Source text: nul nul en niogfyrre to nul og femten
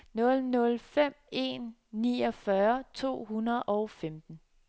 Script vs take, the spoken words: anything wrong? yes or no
yes